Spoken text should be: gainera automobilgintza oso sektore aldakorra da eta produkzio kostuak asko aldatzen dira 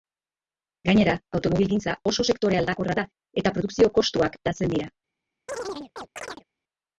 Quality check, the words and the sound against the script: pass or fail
fail